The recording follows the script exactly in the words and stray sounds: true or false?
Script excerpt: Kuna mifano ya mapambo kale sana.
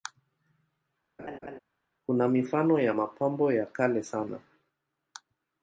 false